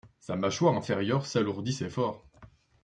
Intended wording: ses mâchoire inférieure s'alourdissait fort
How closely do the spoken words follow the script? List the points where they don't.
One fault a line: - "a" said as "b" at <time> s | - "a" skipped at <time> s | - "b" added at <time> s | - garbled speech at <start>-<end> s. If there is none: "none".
- "ses" said as "sa" at 0.2 s